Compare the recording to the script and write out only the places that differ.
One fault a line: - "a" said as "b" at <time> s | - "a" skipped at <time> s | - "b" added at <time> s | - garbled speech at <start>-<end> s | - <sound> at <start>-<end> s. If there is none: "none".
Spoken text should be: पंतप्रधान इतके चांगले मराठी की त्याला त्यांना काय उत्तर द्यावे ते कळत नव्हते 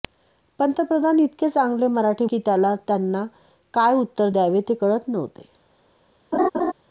- laugh at 6.3-6.7 s